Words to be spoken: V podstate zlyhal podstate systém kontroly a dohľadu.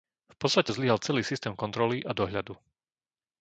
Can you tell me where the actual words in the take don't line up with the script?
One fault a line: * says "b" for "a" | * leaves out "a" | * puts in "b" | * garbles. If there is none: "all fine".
* says "celý" for "podstate"